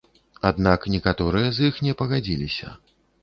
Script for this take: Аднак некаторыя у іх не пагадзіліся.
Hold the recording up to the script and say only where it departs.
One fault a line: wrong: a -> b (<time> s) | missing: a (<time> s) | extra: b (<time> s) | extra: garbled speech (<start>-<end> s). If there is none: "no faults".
wrong: у -> з (1.6 s)